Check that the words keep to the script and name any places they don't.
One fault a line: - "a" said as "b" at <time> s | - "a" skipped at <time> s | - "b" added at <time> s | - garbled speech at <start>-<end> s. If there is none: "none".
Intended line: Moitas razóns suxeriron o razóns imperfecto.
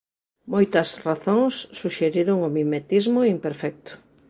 - "razóns" said as "mimetismo" at 2.6 s